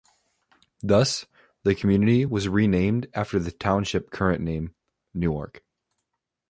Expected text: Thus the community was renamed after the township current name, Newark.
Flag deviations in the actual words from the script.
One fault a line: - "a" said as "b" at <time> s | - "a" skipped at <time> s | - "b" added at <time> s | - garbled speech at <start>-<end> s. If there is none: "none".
none